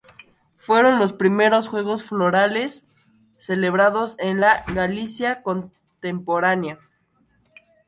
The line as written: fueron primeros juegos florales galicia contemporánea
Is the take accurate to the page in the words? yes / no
no